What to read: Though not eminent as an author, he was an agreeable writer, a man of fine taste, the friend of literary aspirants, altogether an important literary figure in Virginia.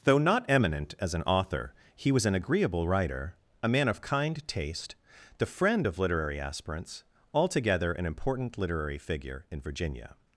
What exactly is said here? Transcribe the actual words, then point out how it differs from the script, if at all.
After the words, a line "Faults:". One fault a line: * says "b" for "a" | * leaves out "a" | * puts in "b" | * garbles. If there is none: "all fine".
Though not eminent as an author, he was an agreeable writer, a man of kind taste, the friend of literary aspirants, altogether an important literary figure in Virginia.
Faults:
* says "kind" for "fine"